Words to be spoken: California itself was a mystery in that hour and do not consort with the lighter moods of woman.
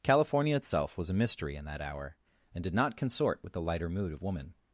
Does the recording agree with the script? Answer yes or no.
no